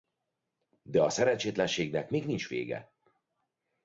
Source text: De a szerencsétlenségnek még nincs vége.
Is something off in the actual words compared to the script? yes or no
no